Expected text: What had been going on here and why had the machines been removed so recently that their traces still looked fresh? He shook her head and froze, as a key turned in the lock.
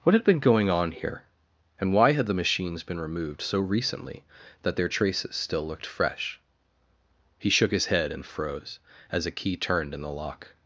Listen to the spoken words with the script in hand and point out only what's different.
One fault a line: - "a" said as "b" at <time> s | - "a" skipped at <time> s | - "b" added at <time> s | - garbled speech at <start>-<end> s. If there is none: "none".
- "her" said as "his" at 7.7 s